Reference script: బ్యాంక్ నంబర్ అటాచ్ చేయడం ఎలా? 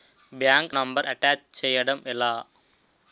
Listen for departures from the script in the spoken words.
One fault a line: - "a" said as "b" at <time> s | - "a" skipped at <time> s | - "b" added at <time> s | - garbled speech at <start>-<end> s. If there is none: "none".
none